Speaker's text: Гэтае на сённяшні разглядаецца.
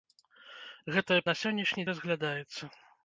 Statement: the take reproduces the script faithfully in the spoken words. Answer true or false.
true